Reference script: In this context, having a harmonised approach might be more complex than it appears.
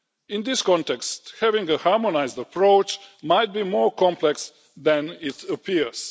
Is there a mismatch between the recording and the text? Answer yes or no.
no